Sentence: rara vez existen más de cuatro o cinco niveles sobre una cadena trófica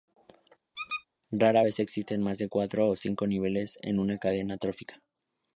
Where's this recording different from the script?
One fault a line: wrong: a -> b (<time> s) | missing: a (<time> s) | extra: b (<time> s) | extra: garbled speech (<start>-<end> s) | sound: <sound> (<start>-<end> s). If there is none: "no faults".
sound: squeak (0.7-1.0 s)
wrong: sobre -> en (3.8 s)